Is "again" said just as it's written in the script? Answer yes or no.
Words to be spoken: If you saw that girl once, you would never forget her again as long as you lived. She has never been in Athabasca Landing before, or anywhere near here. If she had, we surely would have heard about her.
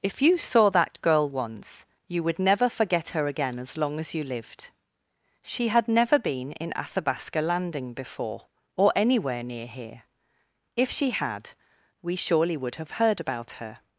yes